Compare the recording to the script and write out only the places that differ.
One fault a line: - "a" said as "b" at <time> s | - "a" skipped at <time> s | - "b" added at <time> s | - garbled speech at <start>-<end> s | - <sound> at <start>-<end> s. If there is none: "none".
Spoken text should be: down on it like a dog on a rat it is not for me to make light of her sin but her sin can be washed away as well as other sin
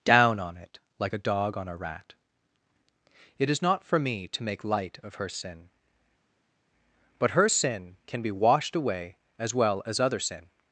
none